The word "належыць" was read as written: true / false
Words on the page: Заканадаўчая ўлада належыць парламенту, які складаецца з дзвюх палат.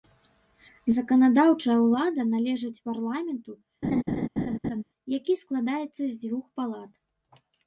true